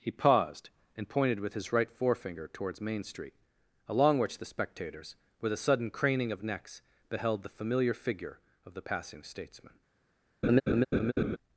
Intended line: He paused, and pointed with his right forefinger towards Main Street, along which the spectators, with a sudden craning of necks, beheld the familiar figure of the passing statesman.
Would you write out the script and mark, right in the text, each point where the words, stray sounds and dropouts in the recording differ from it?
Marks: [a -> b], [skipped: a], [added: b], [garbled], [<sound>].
He paused, and pointed with his right forefinger towards Main Street, along which the spectators, with a sudden craning of necks, beheld the familiar figure of the passing statesman. [laugh]